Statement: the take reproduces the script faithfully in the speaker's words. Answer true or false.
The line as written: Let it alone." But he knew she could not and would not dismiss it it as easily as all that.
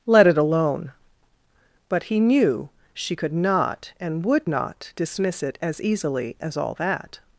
false